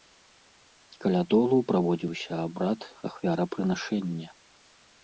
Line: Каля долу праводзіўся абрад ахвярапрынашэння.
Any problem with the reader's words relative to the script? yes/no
no